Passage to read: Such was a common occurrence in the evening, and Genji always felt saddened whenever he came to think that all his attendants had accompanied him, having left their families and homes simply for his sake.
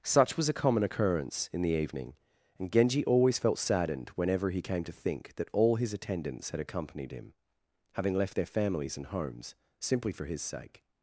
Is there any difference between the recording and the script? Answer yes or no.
no